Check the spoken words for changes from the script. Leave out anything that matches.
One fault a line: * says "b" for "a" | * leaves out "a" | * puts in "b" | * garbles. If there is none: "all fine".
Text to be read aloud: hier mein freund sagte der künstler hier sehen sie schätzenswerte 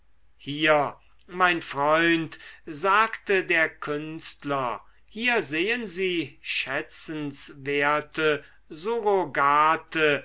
all fine